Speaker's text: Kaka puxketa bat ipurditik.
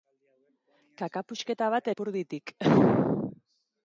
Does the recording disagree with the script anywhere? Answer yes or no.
no